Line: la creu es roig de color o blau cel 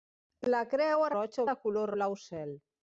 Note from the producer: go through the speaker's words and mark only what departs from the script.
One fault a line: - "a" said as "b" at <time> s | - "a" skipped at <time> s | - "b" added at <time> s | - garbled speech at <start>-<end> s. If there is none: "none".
none